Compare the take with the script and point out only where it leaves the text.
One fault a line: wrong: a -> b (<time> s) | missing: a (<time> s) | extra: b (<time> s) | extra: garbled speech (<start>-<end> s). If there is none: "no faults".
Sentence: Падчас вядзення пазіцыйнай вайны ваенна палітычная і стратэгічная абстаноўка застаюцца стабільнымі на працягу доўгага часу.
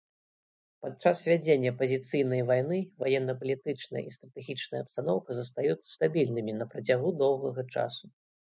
no faults